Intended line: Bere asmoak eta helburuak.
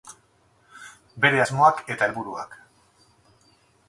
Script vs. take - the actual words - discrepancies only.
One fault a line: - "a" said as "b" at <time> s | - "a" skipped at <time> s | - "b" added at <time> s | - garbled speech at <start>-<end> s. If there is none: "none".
none